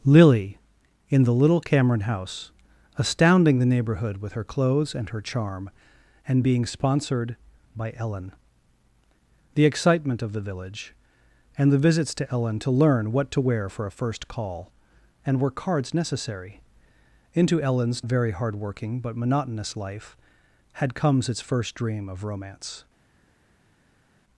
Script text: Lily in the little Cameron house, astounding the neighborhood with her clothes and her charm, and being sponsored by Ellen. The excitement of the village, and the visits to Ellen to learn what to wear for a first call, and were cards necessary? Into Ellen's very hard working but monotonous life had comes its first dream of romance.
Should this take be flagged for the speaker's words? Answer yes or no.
no